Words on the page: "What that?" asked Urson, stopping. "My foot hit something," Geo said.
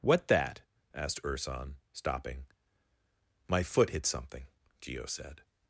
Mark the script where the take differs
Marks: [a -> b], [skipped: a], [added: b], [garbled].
"What that?" asked Urson, stopping. "My foot hit something," Geo said.